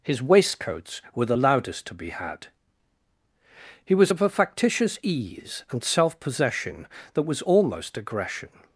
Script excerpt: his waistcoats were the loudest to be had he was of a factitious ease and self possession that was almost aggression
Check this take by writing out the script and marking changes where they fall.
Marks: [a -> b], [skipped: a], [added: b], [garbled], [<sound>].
his waistcoats were the loudest to be had he was of a factitious ease and self possession that was almost aggression